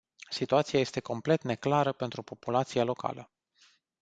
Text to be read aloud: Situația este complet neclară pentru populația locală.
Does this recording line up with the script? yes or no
yes